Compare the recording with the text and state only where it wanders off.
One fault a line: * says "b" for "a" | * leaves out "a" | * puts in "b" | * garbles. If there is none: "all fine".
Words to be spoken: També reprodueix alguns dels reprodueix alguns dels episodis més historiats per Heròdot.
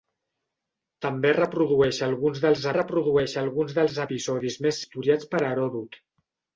all fine